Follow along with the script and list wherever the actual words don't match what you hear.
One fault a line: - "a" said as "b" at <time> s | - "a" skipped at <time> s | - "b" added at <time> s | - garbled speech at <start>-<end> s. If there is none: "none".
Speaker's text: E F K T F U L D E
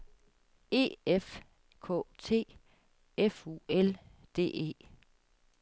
none